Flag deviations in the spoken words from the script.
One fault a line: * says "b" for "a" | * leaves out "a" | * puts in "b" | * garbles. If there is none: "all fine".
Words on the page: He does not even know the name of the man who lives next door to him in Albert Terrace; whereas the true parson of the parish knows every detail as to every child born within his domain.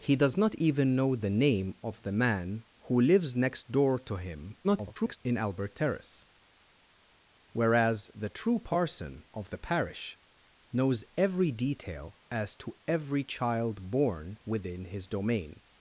* garbles